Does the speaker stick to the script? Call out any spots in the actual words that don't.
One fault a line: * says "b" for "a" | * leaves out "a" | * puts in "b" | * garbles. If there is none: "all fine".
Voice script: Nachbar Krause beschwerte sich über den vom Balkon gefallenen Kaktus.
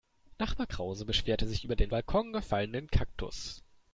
* leaves out "vom"